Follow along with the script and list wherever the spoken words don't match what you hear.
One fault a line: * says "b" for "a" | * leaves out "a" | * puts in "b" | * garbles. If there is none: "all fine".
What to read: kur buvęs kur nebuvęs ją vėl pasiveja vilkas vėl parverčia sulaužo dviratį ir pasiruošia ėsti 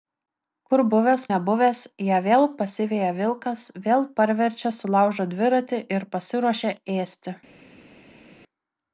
* leaves out "kur"